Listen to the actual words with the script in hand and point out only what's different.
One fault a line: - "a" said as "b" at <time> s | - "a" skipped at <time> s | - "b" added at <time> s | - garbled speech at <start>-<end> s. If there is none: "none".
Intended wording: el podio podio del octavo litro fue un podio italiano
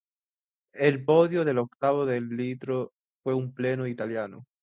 - "podio" skipped at 1.4 s
- "de" added at 2.0 s
- "podio" said as "pleno" at 3.5 s